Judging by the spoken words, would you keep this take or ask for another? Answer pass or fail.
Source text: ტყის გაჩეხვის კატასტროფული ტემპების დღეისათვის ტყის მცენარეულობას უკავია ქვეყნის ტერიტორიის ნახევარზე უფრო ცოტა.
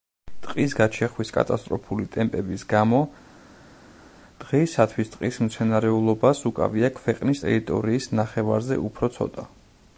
fail